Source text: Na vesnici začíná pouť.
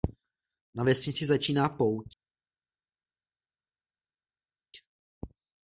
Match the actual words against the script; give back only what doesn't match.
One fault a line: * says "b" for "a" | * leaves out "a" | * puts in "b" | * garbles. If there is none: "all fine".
all fine